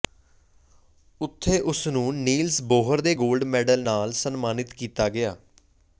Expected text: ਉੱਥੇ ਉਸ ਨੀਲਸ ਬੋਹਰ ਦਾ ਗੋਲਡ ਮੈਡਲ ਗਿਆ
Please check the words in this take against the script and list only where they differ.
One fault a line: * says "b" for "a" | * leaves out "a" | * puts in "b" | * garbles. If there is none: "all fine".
* puts in "ਨੂੰ"
* says "ਦੇ" for "ਦਾ"
* puts in "ਨਾਲ ਸਨਮਾਨਿਤ ਕੀਤਾ"